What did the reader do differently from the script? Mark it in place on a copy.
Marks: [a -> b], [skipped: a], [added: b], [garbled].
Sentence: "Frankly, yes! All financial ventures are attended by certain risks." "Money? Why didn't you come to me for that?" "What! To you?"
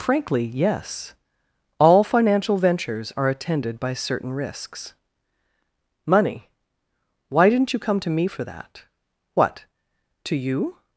"Frankly, yes! All financial ventures are attended by certain risks." "Money? Why didn't you come to me for that?" "What! To you?"